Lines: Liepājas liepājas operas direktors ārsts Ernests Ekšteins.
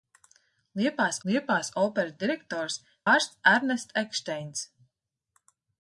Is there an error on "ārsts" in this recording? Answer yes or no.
no